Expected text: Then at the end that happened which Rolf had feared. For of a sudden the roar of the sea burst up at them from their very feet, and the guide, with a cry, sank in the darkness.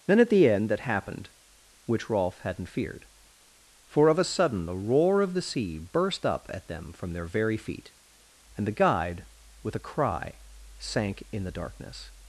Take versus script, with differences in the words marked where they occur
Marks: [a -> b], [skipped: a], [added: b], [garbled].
Then at the end that happened which Rolf [had -> hadn't] feared. For of a sudden the roar of the sea burst up at them from their very feet, and the guide, with a cry, sank in the darkness.